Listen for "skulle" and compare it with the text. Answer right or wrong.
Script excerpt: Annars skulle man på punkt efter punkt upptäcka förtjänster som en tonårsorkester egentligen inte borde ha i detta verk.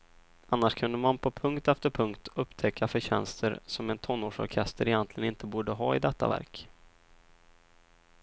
wrong